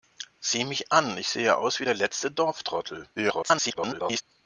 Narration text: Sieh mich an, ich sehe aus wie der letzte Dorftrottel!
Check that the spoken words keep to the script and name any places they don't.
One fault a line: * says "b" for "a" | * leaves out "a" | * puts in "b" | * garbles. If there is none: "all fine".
* garbles